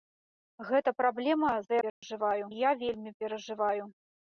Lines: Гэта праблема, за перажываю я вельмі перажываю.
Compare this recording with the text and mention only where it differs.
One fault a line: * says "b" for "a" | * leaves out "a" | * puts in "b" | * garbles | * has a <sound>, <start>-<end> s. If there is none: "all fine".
* has a dropout, 1.9-2.0 s